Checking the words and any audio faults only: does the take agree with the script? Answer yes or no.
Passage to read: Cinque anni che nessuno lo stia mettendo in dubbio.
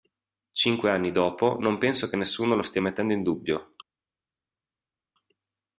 no